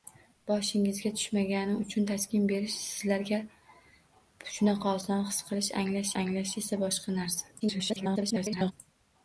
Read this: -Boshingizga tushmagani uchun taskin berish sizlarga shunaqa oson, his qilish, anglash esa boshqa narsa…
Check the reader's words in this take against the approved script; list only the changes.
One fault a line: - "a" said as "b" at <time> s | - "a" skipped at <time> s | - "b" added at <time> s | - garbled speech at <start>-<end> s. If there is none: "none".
- "anglash" added at 6.2 s
- garbled speech at 7.6-8.7 s